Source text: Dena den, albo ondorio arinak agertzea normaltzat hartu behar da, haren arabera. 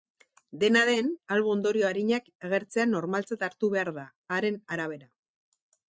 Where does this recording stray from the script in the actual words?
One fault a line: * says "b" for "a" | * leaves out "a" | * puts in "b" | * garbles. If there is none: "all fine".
all fine